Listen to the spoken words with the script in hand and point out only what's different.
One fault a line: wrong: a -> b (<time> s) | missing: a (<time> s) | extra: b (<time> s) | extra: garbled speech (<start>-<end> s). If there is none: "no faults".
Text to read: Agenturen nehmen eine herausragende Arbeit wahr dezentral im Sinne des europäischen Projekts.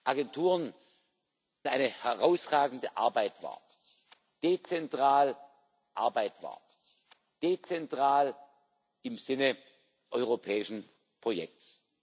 missing: nehmen (0.7 s)
extra: Arbeit wahr dezentral (6.0 s)
missing: des (9.6 s)